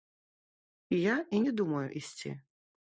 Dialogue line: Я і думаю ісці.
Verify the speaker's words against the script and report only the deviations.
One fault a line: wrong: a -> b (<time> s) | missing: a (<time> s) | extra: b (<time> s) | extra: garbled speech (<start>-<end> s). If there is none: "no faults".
extra: не (1.4 s)